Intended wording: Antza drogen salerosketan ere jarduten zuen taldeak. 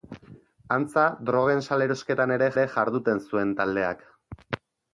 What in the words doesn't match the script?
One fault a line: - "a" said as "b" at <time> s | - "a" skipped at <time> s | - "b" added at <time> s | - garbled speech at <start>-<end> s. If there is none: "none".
- "ere" added at 2.5 s